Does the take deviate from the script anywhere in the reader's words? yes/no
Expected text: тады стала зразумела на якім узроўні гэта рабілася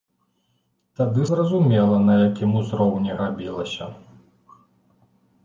yes